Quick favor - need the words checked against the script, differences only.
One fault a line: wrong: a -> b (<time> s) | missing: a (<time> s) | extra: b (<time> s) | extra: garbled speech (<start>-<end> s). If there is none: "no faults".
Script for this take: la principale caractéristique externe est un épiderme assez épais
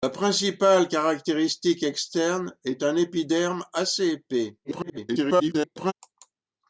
extra: garbled speech (4.6-5.9 s)